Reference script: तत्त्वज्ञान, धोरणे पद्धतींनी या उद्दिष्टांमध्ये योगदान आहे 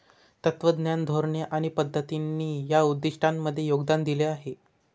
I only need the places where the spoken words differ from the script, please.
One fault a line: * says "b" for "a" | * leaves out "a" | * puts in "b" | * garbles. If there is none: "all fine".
* puts in "आणि"
* puts in "दिले"